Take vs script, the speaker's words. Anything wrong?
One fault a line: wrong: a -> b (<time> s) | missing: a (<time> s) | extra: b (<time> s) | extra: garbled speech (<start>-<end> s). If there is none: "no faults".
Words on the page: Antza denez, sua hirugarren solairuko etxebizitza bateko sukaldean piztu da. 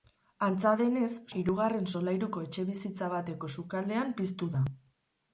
missing: sua (1.1 s)